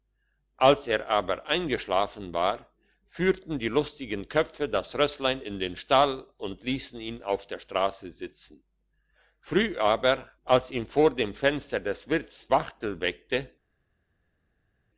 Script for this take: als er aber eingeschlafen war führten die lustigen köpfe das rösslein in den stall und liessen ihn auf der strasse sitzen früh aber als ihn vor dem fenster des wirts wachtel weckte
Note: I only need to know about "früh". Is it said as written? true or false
true